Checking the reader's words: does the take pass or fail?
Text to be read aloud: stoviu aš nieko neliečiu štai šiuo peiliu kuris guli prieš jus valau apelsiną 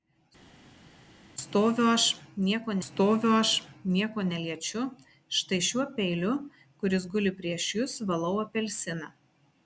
fail